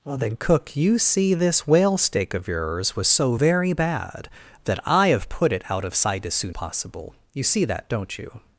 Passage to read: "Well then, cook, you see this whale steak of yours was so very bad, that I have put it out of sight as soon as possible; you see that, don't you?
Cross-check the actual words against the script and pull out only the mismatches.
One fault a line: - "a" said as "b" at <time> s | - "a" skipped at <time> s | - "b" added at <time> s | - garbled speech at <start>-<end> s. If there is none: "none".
- "as" skipped at 6.5 s